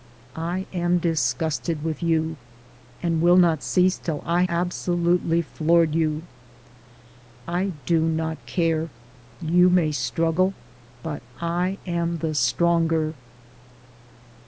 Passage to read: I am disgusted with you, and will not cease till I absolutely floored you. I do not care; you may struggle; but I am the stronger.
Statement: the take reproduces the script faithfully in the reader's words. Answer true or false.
true